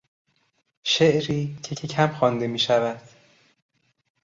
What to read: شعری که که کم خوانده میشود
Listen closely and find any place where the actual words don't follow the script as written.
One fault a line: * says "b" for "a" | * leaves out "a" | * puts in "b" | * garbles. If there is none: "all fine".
all fine